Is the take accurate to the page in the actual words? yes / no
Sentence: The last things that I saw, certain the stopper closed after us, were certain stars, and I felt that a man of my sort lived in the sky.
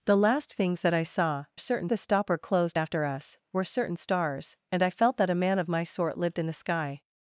yes